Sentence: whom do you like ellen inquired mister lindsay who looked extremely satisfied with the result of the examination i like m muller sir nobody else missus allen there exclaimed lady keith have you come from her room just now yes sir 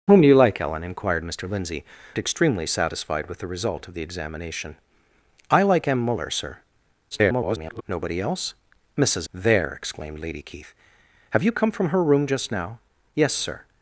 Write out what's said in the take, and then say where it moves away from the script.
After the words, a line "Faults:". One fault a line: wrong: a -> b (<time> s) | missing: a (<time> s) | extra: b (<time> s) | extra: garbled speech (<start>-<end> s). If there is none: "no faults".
whom do you like ellen inquired mister lindsay extremely satisfied with the result of the examination i like m muller sir [garbled] nobody else missus there exclaimed lady keith have you come from her room just now yes sir
Faults:
missing: who looked (1.9 s)
extra: garbled speech (7.1-7.8 s)
missing: allen (9.3 s)